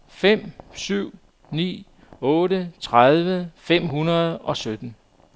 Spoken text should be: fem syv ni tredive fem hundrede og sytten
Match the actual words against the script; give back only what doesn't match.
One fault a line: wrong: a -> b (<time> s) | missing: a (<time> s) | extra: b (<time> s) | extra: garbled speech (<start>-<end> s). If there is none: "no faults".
extra: otte (2.2 s)